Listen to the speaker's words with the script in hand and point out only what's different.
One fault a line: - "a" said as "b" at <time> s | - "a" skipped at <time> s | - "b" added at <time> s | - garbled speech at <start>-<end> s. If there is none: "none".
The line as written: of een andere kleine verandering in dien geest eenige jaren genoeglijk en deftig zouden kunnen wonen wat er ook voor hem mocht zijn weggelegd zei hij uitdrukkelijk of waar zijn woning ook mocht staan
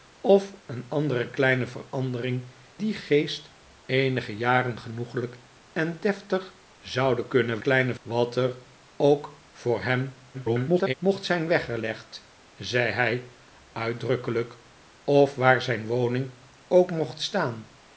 - "in" skipped at 2.5 s
- "wonen" said as "kleine" at 7.6 s
- garbled speech at 10.3-10.9 s